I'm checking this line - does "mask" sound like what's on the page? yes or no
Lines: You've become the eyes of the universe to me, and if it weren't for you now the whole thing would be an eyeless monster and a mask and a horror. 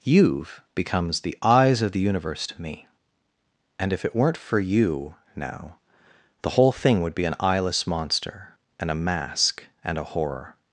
yes